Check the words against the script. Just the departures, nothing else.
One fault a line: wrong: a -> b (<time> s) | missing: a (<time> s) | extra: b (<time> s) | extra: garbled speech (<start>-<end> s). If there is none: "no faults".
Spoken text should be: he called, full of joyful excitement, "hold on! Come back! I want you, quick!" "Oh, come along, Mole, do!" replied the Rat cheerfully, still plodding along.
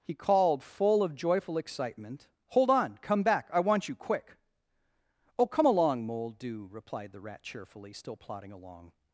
no faults